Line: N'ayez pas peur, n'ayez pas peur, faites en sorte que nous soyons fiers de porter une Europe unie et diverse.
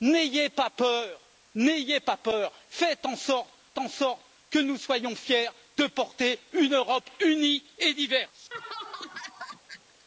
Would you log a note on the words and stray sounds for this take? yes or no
yes